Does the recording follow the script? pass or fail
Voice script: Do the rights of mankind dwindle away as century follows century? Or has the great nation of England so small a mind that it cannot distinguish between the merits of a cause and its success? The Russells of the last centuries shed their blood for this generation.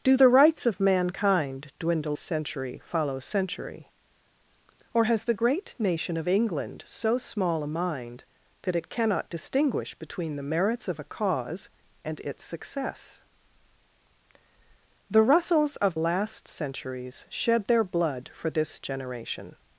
fail